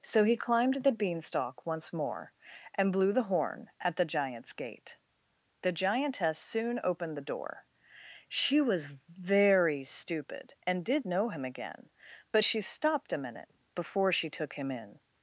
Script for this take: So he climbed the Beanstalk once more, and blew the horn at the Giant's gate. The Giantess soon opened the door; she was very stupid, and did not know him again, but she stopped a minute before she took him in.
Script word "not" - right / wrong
wrong